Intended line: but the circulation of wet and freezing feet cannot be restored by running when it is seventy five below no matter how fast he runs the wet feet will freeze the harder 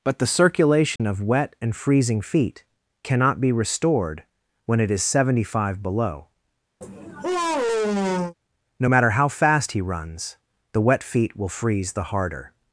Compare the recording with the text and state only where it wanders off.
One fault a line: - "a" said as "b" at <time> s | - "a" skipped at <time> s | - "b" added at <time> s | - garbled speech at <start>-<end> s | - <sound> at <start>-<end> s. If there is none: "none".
- dropout at 1.0-1.0 s
- "by running" skipped at 4.2 s
- sigh at 6.8-8.3 s